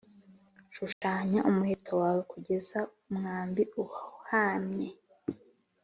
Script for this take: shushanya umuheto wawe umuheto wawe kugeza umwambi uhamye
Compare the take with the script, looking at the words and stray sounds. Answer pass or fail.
fail